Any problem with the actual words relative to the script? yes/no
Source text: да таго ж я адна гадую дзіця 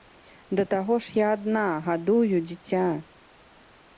no